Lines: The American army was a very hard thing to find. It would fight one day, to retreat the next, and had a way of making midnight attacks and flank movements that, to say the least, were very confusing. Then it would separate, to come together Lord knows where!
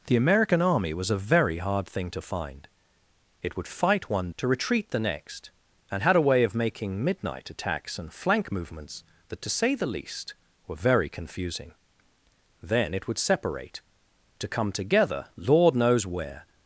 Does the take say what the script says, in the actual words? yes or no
no